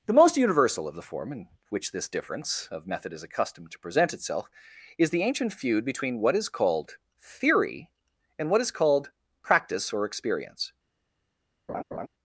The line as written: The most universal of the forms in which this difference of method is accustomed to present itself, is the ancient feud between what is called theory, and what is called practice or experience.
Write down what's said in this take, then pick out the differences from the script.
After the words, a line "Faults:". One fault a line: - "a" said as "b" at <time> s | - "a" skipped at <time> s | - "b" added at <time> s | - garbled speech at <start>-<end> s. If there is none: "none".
The most universal of the form in which this difference of method is accustomed to present itself, is the ancient feud between what is called theory, and what is called practice or experience.
Faults:
- "forms" said as "form" at 1.0 s